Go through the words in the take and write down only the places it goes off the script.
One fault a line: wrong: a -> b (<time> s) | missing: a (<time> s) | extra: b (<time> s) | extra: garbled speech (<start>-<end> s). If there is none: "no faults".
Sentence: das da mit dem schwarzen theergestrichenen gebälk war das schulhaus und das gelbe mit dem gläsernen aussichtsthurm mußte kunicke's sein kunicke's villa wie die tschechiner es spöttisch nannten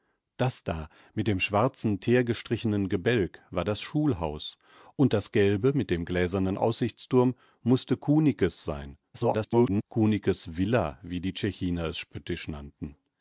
extra: garbled speech (9.1-9.8 s)